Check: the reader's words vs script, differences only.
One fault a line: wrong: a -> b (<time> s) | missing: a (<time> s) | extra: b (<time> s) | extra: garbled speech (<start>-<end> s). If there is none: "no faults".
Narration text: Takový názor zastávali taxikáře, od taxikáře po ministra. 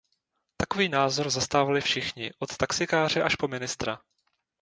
wrong: taxikáře -> všichni (1.8 s)
extra: až (3.2 s)